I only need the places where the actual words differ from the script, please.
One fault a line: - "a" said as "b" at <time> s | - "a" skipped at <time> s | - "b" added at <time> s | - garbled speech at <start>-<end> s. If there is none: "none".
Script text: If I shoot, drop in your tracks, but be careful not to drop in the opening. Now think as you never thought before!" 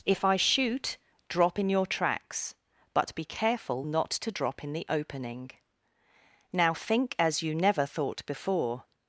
none